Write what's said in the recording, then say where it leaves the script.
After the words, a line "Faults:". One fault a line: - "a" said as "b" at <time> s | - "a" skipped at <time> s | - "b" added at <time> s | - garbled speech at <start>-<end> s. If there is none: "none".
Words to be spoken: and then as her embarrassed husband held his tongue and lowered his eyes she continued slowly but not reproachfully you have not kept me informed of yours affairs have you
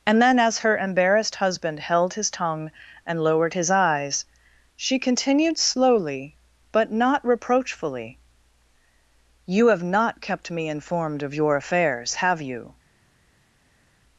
and then as her embarrassed husband held his tongue and lowered his eyes she continued slowly but not reproachfully you have not kept me informed of your affairs have you
Faults:
- "yours" said as "your" at 11.3 s